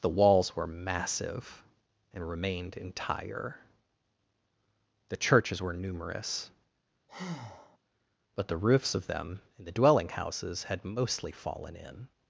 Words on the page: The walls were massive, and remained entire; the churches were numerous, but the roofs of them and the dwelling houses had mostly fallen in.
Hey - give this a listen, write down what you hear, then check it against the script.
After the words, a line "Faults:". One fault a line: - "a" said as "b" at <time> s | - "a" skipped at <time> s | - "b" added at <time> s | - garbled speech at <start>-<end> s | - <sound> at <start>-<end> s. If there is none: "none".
The walls were massive, and remained entire; the churches were numerous, but the roofs of them and the dwelling houses had mostly fallen in.
Faults:
- breath at 7.1-7.8 s